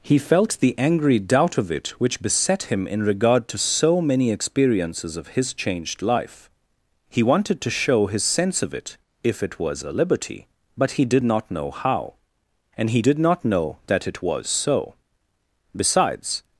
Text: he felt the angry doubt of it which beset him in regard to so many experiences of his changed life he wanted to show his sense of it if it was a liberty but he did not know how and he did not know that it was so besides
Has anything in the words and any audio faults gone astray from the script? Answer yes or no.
no